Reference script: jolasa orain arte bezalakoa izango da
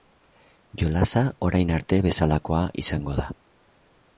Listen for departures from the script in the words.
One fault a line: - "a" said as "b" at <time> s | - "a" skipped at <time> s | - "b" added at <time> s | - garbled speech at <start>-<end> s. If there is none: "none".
none